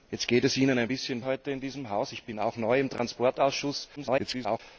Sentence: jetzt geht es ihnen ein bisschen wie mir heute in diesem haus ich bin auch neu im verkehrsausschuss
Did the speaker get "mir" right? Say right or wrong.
wrong